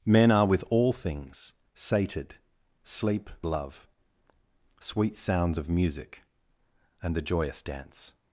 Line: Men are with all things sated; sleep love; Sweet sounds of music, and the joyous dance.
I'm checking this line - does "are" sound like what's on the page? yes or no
yes